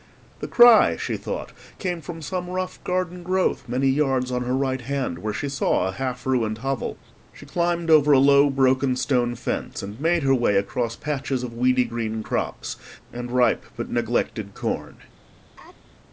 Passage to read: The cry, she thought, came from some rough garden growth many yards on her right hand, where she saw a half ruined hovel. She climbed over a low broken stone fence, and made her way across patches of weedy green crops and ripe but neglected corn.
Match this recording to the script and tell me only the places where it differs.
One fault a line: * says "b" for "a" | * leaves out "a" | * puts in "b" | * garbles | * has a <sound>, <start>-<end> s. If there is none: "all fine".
* has a sneeze, 15.6-15.8 s